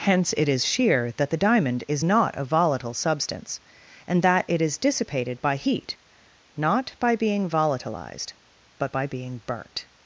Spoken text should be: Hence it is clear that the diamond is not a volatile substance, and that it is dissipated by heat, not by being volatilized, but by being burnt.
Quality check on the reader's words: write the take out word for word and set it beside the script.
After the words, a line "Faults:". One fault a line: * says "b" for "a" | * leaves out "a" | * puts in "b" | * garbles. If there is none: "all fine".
Hence it is sheer that the diamond is not a volatile substance, and that it is dissipated by heat, not by being volatilized, but by being burnt.
Faults:
* says "sheer" for "clear"